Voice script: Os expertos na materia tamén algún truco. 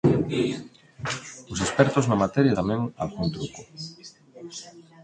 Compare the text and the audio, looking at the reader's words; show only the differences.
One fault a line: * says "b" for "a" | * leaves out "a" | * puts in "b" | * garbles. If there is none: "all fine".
all fine